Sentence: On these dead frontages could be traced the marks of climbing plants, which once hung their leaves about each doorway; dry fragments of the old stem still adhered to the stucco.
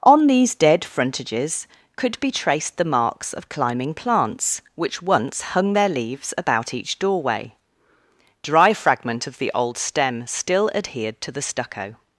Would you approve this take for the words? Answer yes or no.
no